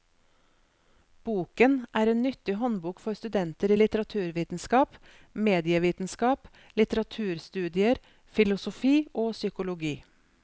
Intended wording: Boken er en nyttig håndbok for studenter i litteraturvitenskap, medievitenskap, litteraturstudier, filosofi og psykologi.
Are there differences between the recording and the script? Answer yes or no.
no